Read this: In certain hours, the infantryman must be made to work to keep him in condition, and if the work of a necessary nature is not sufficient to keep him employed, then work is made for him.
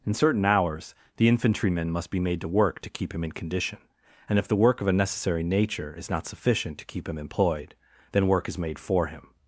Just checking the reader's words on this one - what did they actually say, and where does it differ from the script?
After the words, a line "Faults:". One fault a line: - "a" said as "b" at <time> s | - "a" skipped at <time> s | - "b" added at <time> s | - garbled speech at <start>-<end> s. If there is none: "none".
In certain hours, the infantryman must be made to work to keep him in condition, and if the work of a necessary nature is not sufficient to keep him employed, then work is made for him.
Faults:
none